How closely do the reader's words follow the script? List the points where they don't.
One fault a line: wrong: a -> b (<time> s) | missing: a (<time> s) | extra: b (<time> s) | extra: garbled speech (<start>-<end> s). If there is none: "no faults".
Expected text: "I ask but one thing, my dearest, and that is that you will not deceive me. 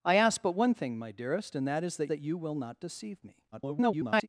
extra: that (2.1 s)
extra: garbled speech (3.5-4.3 s)